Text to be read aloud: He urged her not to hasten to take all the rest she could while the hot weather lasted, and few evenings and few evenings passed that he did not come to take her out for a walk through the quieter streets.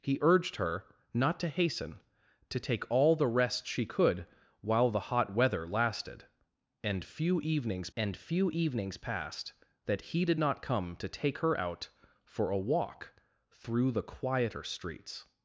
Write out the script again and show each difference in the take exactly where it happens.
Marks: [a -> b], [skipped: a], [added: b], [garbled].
He urged her not to hasten to take all the rest she could while the hot weather lasted, and few evenings and few evenings passed that he did not come to take her out for a walk through the quieter streets.